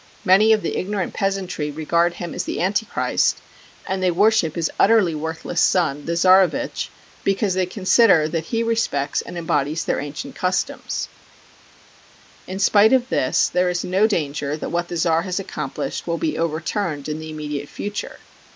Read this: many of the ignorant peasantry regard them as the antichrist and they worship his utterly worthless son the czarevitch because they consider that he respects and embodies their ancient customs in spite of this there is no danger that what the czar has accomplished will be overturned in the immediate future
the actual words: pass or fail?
fail